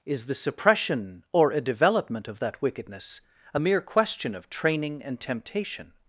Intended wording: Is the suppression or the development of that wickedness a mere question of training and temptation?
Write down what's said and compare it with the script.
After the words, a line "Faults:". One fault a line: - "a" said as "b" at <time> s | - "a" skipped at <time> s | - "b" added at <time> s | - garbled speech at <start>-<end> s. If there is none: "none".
Is the suppression or a development of that wickedness a mere question of training and temptation?
Faults:
- "the" said as "a" at 1.5 s